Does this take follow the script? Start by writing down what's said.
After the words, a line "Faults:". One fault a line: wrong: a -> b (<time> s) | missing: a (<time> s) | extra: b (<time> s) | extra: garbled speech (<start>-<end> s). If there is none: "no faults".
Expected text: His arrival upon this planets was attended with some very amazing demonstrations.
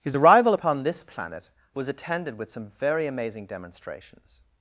His arrival upon this planet was attended with some very amazing demonstrations.
Faults:
wrong: planets -> planet (1.0 s)